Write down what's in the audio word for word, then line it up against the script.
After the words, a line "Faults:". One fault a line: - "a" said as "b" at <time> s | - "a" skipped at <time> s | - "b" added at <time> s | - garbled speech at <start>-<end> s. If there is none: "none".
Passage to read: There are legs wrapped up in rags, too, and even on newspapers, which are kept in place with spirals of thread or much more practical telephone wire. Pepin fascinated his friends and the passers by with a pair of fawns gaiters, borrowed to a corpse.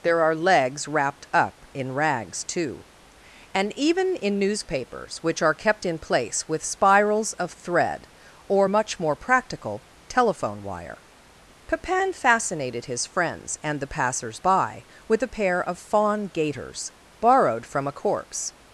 There are legs wrapped up in rags, too, and even in newspapers, which are kept in place with spirals of thread or much more practical telephone wire. Pepin fascinated his friends and the passers by with a pair of fawn gaiters, borrowed from a corpse.
Faults:
- "on" said as "in" at 4.2 s
- "fawns" said as "fawn" at 15.8 s
- "to" said as "from" at 17.6 s